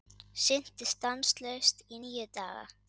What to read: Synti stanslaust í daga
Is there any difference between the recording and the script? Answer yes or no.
yes